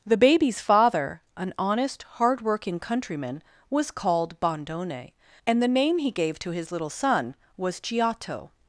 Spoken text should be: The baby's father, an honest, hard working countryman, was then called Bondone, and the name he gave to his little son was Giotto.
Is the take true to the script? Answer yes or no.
no